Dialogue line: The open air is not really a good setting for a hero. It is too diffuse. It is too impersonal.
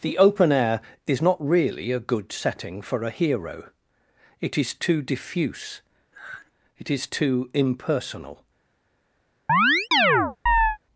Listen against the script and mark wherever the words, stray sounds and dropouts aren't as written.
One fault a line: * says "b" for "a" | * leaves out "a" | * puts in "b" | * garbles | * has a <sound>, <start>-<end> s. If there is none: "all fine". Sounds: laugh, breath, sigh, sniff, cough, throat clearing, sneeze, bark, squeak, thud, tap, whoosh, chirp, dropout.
* has a sigh, 6.1-6.5 s
* has a chirp, 9.5-10.8 s